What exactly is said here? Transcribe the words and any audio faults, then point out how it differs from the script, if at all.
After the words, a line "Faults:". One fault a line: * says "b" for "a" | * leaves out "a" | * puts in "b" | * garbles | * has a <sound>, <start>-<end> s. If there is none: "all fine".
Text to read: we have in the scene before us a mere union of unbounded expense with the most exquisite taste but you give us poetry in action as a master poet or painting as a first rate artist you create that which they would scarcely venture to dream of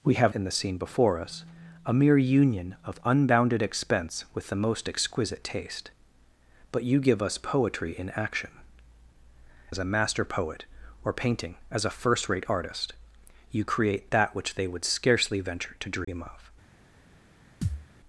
we have in the scene before us a mere union of unbounded expense with the most exquisite taste but you give us poetry in action as a master poet or painting as a first rate artist you create that which they would scarcely venture to dream of
Faults:
* has a dropout, 16.0-16.1 s
* has a thud, 17.6-17.9 s